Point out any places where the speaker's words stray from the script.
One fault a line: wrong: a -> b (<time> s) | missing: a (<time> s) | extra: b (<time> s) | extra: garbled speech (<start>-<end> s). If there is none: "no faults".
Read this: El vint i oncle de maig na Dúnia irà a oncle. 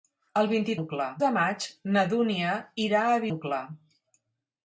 no faults